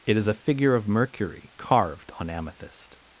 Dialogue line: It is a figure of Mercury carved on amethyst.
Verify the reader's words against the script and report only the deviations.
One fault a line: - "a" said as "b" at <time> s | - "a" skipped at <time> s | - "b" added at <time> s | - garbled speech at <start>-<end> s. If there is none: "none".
none